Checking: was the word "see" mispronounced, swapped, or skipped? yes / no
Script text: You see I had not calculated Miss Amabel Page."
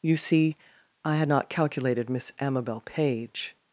no